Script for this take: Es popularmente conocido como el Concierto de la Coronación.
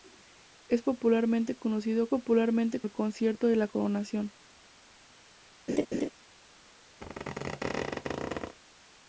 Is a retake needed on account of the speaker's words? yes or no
yes